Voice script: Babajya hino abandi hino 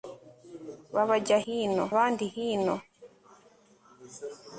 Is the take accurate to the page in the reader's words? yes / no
yes